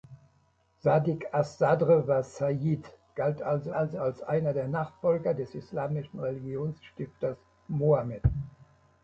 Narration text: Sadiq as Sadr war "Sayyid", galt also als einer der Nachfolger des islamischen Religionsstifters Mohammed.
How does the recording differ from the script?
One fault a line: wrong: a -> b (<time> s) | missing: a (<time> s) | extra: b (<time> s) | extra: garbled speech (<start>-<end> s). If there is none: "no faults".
extra: also (3.7 s)